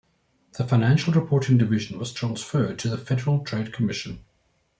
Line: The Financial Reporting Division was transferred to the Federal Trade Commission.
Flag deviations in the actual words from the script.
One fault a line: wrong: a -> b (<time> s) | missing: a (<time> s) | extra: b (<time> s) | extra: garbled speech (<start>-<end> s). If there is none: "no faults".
no faults